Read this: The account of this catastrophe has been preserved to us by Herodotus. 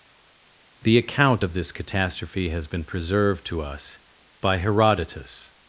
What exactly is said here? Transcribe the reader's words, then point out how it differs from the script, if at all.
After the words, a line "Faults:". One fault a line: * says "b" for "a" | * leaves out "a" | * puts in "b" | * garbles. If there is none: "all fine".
The account of this catastrophe has been preserved to us by Herodotus.
Faults:
all fine